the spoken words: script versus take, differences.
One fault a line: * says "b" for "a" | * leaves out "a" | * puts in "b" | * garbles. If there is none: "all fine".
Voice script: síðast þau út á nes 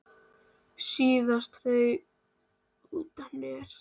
all fine